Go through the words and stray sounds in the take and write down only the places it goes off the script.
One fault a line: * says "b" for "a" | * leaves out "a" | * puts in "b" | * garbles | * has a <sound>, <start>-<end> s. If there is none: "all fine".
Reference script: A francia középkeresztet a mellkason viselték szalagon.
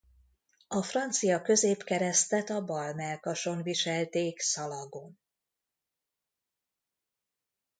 * puts in "bal"